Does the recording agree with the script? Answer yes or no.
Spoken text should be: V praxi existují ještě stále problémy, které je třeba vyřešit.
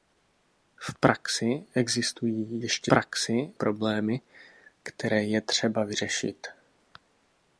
no